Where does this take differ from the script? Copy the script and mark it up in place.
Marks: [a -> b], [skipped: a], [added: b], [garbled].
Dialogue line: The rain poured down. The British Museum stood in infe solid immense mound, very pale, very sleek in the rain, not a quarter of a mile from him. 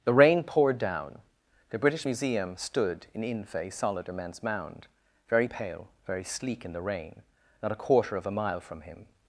The rain poured down. The British Museum stood in infe solid immense mound, very pale, very sleek in the rain, not a quarter of a mile from him.